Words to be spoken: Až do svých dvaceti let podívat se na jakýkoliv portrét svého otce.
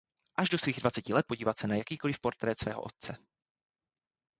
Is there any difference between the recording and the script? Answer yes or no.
no